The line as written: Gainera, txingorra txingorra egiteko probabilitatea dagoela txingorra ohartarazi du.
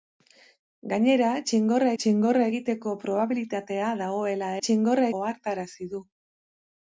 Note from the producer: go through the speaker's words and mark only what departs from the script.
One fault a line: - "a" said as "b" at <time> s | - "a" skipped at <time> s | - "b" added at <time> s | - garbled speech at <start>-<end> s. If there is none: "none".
none